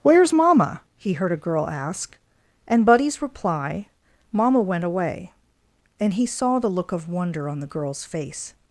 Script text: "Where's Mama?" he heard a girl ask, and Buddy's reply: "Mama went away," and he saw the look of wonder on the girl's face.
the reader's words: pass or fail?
pass